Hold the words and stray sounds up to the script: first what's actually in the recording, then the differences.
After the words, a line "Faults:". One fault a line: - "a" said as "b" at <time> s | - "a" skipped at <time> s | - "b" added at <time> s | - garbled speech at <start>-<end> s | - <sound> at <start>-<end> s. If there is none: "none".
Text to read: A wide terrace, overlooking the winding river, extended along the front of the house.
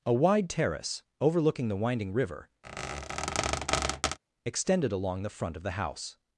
A wide terrace, overlooking the winding river, extended along the front of the house.
Faults:
- squeak at 2.6-4.2 s